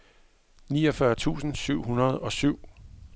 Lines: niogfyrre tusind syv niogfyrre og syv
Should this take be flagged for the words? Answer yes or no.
yes